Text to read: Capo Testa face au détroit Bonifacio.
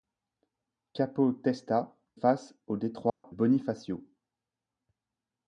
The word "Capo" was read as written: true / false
true